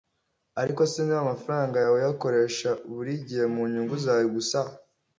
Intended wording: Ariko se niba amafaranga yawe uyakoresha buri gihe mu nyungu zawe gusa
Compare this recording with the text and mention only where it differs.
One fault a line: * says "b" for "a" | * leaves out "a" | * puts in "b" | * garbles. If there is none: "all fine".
all fine